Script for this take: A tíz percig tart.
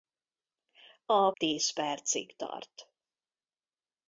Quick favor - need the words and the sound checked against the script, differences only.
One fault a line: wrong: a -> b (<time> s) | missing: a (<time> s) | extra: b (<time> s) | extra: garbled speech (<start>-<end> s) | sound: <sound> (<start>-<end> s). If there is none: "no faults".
no faults